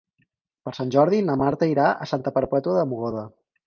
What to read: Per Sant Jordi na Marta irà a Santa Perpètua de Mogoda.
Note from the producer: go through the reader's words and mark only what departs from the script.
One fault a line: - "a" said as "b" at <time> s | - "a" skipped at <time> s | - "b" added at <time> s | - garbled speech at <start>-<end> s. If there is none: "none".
none